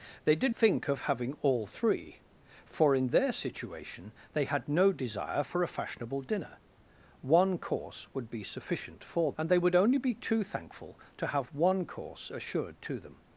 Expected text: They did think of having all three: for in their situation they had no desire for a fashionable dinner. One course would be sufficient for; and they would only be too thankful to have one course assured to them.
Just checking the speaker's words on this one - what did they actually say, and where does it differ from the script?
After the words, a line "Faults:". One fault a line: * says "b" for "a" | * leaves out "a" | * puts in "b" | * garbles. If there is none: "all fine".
They did think of having all three: for in their situation they had no desire for a fashionable dinner. One course would be sufficient for; and they would only be too thankful to have one course assured to them.
Faults:
all fine